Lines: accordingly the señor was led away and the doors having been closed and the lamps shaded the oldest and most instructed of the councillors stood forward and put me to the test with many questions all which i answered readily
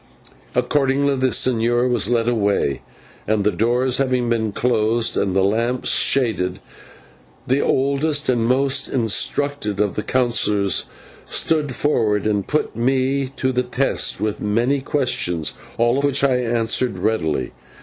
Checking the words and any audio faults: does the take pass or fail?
pass